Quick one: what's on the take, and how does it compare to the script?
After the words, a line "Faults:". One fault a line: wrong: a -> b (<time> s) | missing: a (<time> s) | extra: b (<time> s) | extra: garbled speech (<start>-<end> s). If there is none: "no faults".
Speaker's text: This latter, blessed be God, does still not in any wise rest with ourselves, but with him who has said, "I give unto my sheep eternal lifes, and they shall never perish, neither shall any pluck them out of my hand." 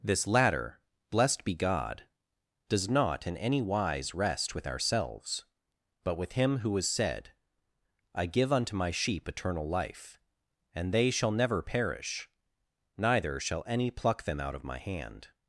This latter, blessed be God, does not in any wise rest with ourselves, but with him who has said, "I give unto my sheep eternal life, and they shall never perish, neither shall any pluck them out of my hand."
Faults:
missing: still (2.9 s)
wrong: lifes -> life (9.7 s)